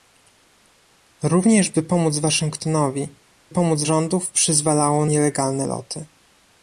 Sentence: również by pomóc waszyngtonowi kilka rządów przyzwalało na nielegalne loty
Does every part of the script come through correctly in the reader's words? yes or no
no